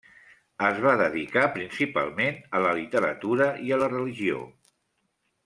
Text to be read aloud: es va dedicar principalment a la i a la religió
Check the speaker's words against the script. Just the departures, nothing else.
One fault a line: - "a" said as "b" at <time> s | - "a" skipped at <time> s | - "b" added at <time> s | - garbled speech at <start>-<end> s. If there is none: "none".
- "literatura" added at 2.8 s